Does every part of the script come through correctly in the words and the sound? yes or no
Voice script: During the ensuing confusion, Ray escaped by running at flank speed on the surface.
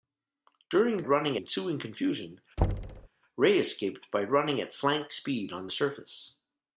no